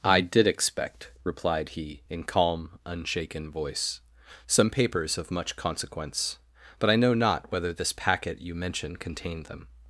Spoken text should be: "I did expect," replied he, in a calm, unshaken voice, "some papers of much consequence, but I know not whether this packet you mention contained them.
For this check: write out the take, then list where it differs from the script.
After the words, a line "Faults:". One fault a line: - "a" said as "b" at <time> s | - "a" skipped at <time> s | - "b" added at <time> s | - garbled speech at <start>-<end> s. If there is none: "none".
"I did expect," replied he, in calm, unshaken voice, "some papers of much consequence, but I know not whether this packet you mention contained them.
Faults:
- "a" skipped at 2.2 s